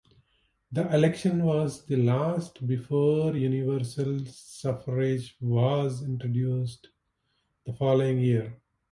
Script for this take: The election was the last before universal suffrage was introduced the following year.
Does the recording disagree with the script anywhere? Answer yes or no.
no